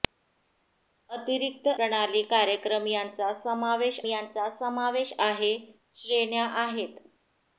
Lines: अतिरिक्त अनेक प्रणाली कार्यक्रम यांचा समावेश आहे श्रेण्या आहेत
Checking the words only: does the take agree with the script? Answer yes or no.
no